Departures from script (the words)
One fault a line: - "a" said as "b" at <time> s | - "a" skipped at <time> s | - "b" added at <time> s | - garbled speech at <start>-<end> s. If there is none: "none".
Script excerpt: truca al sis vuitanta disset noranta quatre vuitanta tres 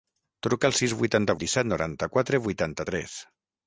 none